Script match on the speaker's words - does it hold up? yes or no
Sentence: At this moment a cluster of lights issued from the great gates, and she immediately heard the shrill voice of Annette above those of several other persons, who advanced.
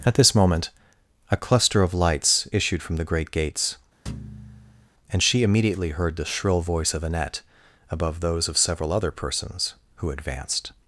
yes